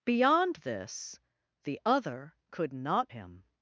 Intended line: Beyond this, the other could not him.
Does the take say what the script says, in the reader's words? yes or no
yes